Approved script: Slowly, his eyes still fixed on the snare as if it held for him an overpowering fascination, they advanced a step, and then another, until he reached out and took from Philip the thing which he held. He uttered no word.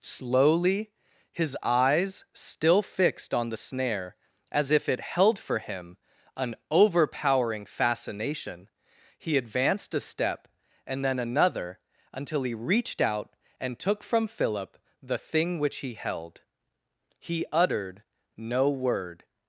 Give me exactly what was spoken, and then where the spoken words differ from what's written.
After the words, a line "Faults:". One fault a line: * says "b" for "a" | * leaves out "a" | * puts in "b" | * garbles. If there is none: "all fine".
Slowly, his eyes still fixed on the snare as if it held for him an overpowering fascination, he advanced a step, and then another, until he reached out and took from Philip the thing which he held. He uttered no word.
Faults:
* says "he" for "they"